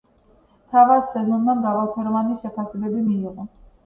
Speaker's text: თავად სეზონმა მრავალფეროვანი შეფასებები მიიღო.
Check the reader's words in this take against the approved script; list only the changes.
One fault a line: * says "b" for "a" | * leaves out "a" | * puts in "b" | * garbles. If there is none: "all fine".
all fine